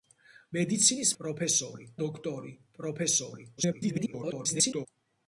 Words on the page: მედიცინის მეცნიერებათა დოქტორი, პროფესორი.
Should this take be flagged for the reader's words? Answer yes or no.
yes